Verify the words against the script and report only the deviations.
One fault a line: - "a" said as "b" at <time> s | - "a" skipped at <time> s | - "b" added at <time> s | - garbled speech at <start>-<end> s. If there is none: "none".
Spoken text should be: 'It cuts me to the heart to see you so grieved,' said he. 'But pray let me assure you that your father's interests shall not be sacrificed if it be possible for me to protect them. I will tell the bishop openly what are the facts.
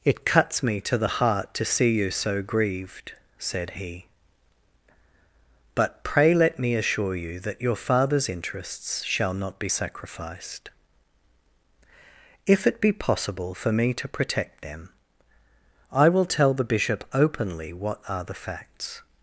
none